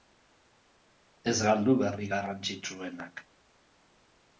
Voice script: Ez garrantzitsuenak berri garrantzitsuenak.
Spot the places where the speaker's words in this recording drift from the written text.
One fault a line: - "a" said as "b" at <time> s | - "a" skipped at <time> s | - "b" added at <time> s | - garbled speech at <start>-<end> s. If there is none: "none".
- "garrantzitsuenak" said as "galdu" at 1.5 s